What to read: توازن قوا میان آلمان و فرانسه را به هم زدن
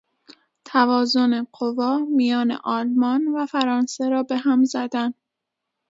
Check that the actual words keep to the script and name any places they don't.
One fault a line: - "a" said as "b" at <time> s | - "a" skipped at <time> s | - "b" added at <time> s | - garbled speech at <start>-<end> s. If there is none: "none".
none